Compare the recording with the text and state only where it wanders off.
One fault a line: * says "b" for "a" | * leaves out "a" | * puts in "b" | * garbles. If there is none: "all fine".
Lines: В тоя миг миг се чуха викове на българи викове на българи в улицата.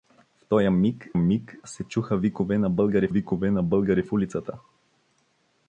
all fine